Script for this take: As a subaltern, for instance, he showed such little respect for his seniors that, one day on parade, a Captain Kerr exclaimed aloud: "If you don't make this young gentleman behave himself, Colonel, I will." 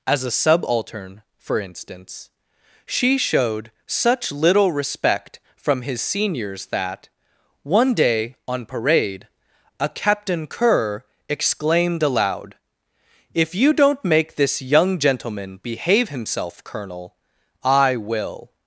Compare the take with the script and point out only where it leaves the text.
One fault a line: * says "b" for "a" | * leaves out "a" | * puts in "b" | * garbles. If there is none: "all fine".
* says "she" for "he"
* says "from" for "for"